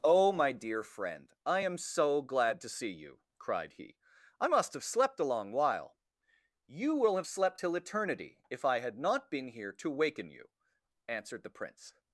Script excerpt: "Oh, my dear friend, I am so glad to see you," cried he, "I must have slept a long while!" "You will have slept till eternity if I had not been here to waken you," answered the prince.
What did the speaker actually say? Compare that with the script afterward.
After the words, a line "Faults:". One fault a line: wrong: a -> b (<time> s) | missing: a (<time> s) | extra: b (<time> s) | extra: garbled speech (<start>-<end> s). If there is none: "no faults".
"Oh, my dear friend, I am so glad to see you," cried he, "I must have slept a long while!" "You will have slept till eternity if I had not been here to waken you," answered the prince.
Faults:
no faults